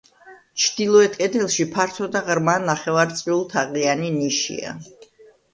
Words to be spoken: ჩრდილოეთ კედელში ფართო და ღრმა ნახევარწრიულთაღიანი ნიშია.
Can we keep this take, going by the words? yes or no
yes